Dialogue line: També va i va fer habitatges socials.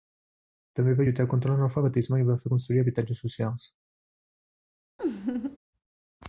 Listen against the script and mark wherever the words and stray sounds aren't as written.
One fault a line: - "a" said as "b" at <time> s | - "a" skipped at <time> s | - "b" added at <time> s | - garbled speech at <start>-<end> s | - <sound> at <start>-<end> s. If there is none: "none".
- "lluitar contra l'analfabetisme" added at 1.1 s
- "construir" added at 2.6 s
- laugh at 5.0-5.6 s